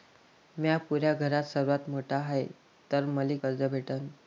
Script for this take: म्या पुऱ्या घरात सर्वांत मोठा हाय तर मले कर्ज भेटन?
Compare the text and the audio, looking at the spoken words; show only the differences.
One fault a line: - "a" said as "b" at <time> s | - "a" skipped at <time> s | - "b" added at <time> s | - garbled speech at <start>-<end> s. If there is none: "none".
none